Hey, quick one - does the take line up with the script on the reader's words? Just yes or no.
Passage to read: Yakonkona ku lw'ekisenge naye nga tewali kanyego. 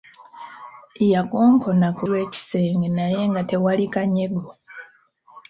yes